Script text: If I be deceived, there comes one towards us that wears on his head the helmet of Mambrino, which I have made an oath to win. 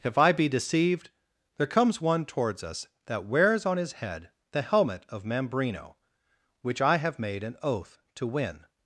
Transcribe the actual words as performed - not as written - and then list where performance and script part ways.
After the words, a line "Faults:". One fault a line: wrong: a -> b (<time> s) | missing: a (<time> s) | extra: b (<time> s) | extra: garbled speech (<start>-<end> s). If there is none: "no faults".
If I be deceived, there comes one towards us that wears on his head the helmet of Mambrino, which I have made an oath to win.
Faults:
no faults